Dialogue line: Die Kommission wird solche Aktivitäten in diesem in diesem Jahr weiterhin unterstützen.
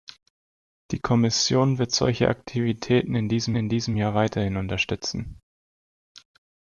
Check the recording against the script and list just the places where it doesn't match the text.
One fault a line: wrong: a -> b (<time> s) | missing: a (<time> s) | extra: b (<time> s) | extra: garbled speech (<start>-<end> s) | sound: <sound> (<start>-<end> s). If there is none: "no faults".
no faults